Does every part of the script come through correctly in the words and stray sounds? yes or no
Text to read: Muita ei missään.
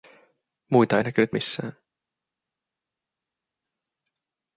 no